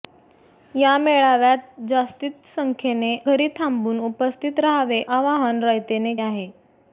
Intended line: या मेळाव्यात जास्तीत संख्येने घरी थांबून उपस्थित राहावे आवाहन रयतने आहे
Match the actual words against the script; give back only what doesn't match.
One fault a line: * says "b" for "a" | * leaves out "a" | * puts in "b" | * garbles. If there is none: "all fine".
all fine